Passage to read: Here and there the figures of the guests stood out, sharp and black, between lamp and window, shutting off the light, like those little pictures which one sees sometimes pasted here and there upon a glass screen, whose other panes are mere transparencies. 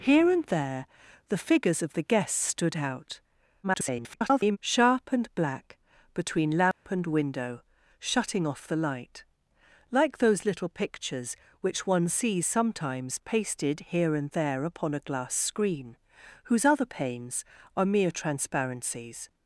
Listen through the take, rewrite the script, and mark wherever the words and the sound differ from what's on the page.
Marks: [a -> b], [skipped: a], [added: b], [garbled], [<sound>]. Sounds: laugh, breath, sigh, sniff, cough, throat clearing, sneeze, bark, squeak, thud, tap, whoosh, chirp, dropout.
Here and there the figures of the guests stood out, [garbled] sharp and black, between lamp [dropout] and window, shutting off the light, like those little pictures which one sees sometimes pasted here and there upon a glass screen, whose other panes are mere transparencies.